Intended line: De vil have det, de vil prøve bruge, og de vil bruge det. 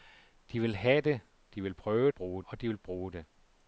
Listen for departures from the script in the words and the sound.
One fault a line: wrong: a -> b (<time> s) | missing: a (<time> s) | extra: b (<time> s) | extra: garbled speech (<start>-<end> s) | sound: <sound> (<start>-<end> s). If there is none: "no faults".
no faults